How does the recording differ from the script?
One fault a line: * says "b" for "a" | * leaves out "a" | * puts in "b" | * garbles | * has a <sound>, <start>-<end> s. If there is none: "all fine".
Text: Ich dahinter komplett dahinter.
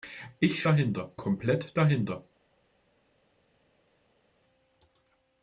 all fine